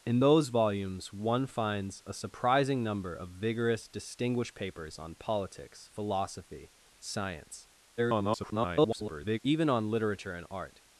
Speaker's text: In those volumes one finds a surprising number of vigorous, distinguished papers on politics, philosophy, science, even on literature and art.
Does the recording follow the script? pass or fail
fail